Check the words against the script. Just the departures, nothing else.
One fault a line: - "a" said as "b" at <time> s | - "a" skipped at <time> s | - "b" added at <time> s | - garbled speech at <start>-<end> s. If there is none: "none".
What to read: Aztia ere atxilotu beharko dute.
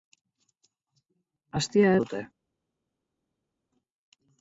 - "ere atxilotu beharko" skipped at 1.9 s